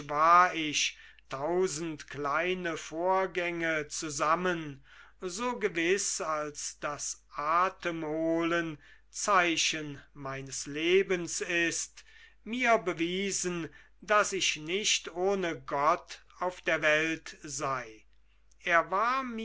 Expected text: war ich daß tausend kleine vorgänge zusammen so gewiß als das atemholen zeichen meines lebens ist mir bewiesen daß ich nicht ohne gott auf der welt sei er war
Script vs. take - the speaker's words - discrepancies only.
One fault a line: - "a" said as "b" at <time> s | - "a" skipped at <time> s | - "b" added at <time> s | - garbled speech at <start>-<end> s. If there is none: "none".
- "daß" skipped at 1.0 s